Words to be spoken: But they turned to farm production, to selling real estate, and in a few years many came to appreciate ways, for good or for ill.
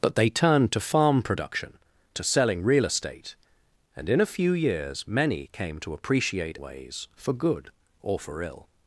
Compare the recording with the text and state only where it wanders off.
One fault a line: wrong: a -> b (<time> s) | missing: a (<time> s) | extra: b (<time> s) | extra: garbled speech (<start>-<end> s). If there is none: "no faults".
no faults